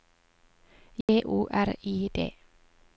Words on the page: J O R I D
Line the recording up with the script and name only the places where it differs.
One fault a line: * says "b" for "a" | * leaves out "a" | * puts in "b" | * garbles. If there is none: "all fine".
all fine